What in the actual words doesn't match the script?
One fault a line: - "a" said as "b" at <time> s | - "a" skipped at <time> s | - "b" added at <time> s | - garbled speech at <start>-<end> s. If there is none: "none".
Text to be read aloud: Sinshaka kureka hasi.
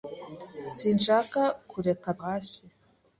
none